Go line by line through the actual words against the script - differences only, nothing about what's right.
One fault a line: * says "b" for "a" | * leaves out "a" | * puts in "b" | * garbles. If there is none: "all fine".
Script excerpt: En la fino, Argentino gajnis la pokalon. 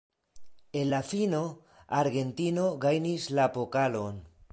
all fine